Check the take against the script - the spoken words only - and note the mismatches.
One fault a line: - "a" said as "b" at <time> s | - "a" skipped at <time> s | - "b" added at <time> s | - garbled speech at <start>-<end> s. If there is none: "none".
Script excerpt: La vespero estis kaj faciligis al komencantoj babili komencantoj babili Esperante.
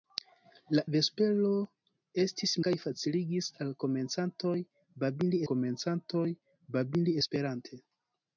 none